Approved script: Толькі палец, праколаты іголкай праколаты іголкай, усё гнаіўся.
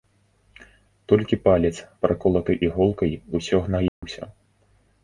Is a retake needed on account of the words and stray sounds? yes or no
yes